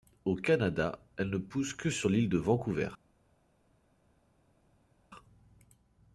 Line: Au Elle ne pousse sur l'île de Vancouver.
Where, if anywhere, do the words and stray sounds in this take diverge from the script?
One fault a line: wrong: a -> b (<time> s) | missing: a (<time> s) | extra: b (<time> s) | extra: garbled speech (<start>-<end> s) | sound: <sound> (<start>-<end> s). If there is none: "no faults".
extra: Canada (0.3 s)
extra: que (1.7 s)